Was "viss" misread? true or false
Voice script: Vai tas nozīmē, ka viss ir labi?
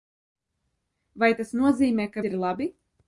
true